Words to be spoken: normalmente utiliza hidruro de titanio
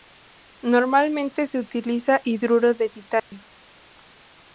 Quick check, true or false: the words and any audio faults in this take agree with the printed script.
false